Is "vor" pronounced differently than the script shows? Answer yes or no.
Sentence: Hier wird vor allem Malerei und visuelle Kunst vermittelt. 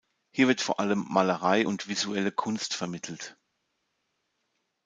no